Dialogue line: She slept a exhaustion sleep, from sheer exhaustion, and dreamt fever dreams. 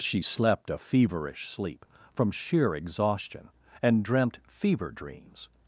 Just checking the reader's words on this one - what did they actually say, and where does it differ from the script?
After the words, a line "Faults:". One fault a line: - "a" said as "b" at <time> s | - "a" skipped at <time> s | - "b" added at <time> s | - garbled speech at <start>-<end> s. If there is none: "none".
She slept a feverish sleep, from sheer exhaustion, and dreamt fever dreams.
Faults:
- "exhaustion" said as "feverish" at 0.7 s